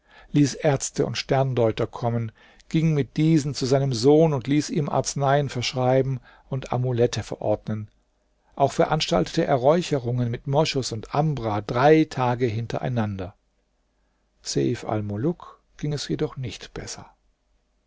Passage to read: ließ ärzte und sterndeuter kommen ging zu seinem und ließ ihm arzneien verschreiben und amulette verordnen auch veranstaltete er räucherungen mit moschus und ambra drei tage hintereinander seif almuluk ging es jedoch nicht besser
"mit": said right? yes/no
yes